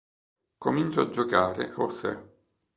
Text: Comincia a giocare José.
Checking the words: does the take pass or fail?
pass